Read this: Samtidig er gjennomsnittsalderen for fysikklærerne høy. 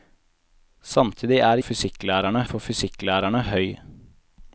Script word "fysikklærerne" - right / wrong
right